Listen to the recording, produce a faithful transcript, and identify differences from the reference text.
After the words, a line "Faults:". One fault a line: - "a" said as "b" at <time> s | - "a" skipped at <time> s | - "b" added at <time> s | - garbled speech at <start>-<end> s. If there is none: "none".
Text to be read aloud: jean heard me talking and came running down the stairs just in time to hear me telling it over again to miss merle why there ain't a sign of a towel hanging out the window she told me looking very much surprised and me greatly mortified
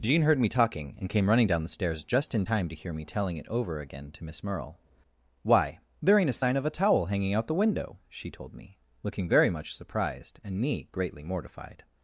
jean heard me talking and came running down the stairs just in time to hear me telling it over again to miss merle why there ain't a sign of a towel hanging out the window she told me looking very much surprised and me greatly mortified
Faults:
none